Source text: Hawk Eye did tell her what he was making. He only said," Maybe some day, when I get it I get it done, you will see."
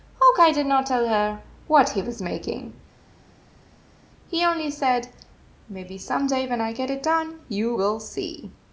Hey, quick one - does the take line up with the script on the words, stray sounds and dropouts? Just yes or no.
no